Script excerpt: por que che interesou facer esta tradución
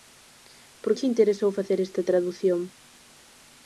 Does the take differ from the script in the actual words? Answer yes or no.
yes